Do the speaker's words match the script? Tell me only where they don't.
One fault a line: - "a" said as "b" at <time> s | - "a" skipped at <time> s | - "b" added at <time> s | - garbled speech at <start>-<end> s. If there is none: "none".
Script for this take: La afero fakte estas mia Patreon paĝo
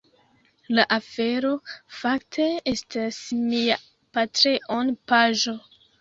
none